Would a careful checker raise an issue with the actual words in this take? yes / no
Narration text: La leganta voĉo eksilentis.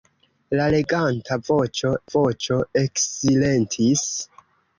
yes